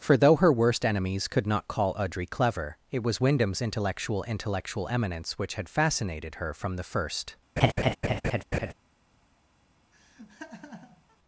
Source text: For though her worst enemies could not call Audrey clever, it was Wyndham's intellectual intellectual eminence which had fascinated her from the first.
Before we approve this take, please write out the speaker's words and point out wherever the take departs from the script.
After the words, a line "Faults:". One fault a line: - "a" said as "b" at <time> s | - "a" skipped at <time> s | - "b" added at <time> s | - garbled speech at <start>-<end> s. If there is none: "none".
For though her worst enemies could not call Audrey clever, it was Wyndham's intellectual intellectual eminence which had fascinated her from the first.
Faults:
none